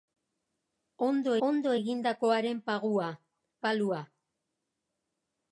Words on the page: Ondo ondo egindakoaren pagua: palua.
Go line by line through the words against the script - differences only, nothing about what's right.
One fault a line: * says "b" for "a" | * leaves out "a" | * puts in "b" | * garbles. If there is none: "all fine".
all fine